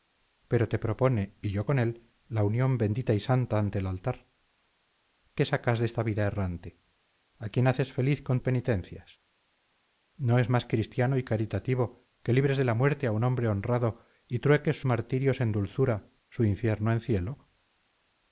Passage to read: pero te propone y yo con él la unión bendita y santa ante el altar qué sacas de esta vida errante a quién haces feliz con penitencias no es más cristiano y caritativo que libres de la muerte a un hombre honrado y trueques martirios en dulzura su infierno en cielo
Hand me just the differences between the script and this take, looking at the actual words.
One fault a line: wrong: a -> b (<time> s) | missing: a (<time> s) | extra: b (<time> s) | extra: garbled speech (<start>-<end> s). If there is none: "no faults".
no faults